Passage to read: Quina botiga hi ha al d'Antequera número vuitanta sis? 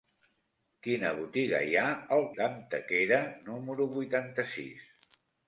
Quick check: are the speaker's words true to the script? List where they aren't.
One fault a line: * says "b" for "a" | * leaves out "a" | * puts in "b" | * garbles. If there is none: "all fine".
all fine